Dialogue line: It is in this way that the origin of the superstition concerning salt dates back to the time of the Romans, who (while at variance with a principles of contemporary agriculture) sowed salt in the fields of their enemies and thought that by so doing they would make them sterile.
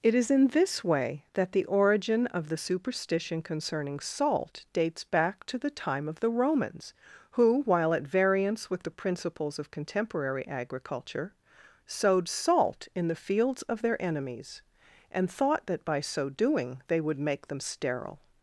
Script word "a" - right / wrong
wrong